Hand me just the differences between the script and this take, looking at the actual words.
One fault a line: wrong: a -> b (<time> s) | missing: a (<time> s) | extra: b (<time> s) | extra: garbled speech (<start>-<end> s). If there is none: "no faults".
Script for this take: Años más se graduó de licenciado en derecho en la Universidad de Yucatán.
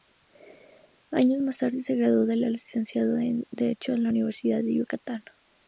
extra: tarde (1.6 s)